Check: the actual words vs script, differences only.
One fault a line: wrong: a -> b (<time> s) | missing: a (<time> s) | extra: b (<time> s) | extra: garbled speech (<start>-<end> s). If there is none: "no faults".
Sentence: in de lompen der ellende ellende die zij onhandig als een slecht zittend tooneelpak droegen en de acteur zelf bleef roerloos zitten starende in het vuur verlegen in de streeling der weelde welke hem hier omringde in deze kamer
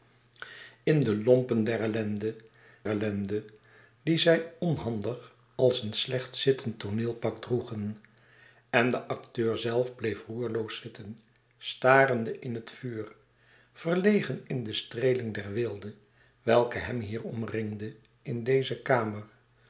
no faults